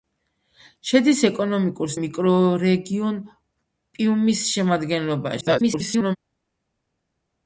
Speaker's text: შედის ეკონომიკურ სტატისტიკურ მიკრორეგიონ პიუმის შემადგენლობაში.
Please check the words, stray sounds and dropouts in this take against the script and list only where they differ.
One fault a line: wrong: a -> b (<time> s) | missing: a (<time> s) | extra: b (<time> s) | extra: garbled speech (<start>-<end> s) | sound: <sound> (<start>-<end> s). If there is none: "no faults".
missing: სტატისტიკურ (1.9 s)
extra: garbled speech (5.4-6.2 s)